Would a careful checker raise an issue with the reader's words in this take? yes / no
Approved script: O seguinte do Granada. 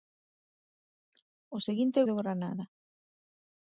no